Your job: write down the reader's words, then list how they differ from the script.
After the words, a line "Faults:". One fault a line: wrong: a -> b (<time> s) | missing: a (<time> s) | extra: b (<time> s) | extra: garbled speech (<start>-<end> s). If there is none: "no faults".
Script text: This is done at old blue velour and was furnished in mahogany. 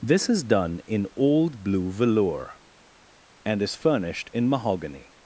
This is done in old blue velour and is furnished in mahogany.
Faults:
wrong: at -> in (0.9 s)
wrong: was -> is (3.6 s)